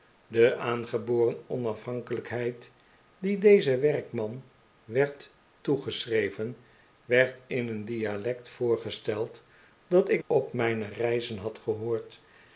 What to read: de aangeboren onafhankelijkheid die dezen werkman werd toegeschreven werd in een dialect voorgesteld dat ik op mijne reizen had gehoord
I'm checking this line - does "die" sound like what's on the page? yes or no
yes